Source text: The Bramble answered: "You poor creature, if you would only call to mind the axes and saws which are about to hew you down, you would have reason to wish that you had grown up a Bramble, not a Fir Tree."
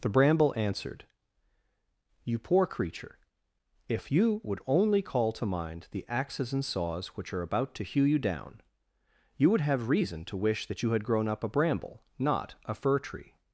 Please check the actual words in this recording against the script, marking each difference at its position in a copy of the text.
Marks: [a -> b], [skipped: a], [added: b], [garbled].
The Bramble answered: "You poor creature, if you would only call to mind the axes and saws which are about to hew you down, you would have reason to wish that you had grown up a Bramble, not a Fir Tree."